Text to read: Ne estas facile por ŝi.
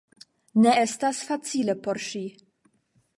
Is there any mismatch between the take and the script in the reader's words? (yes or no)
no